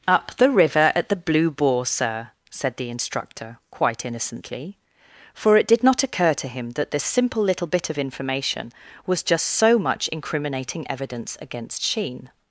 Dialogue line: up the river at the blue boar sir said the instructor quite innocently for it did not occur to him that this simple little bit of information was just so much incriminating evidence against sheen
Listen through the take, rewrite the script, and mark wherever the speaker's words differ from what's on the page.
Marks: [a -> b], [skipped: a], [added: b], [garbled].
up the river at the blue boar sir said the instructor quite innocently for it did not occur to him that this simple little bit of information was just so much incriminating evidence against sheen